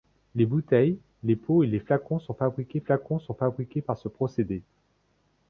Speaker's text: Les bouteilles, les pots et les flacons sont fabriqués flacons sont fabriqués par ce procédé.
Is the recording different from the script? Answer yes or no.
no